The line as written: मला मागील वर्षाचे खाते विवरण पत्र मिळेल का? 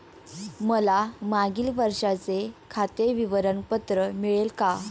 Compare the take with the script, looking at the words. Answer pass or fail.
pass